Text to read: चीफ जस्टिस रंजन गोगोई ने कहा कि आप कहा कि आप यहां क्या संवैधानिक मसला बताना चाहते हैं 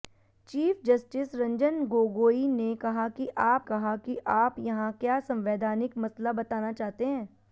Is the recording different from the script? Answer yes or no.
no